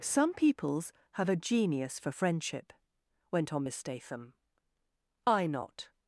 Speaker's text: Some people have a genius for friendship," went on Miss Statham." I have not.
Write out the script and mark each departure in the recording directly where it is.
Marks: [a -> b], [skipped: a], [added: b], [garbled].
Some [people -> peoples] have a genius for friendship," went on Miss Statham." I [skipped: have] not.